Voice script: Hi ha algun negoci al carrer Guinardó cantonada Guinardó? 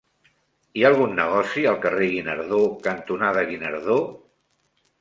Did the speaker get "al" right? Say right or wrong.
right